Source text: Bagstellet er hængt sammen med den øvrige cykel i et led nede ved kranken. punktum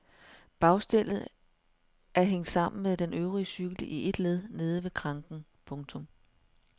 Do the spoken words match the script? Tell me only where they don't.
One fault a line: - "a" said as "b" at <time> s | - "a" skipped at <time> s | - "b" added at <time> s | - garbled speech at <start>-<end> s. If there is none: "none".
none